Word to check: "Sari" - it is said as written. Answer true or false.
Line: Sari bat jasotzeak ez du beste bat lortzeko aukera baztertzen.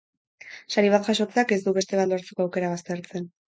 true